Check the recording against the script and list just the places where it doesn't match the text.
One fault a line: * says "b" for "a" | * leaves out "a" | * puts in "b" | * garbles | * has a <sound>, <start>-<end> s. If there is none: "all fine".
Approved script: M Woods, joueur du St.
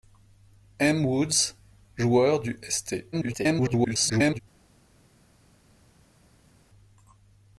* garbles